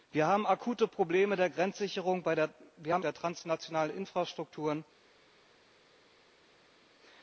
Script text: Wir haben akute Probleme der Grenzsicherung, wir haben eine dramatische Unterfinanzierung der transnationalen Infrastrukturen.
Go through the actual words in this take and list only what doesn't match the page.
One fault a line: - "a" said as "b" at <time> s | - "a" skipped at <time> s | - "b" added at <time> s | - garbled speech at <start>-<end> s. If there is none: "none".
- "eine dramatische Unterfinanzierung" skipped at 3.0 s